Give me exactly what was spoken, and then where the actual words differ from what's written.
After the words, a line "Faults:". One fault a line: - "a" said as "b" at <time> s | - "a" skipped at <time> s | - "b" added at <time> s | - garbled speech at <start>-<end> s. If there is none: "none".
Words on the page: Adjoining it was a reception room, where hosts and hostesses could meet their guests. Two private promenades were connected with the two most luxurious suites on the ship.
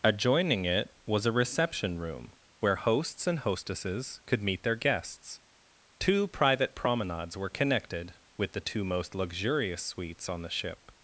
Adjoining it was a reception room, where hosts and hostesses could meet their guests. Two private promenades were connected with the two most luxurious suites on the ship.
Faults:
none